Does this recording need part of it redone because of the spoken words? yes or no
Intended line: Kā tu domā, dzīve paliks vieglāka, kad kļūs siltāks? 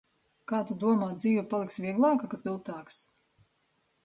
yes